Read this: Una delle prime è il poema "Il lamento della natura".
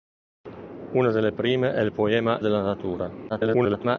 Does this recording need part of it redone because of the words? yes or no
yes